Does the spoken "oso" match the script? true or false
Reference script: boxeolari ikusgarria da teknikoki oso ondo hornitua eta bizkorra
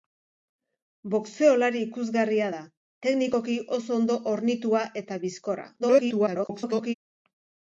true